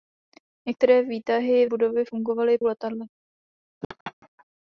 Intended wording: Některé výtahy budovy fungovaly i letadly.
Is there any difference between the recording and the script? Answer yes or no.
no